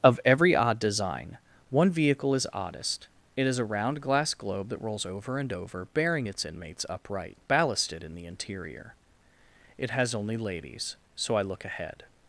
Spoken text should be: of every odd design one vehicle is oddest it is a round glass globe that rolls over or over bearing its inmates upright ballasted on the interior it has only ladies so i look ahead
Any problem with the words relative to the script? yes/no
yes